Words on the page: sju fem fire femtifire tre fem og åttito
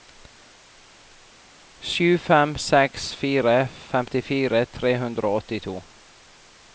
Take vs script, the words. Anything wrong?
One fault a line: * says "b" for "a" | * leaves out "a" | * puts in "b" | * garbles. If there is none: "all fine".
* puts in "seks"
* says "hundre" for "fem"